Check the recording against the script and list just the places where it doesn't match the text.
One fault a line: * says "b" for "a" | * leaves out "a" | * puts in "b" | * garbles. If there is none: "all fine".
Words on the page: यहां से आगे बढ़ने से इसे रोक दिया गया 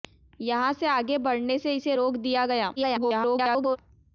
* garbles